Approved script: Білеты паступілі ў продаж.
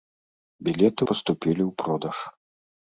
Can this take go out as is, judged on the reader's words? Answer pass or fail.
pass